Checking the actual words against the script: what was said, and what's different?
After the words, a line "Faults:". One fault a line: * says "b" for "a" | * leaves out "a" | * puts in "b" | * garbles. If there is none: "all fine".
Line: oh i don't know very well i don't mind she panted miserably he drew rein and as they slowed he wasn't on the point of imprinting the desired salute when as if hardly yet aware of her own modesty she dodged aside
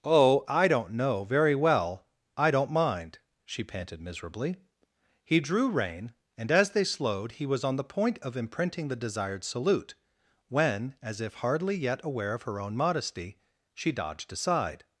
oh i don't know very well i don't mind she panted miserably he drew rein and as they slowed he was on the point of imprinting the desired salute when as if hardly yet aware of her own modesty she dodged aside
Faults:
* says "was" for "wasn't"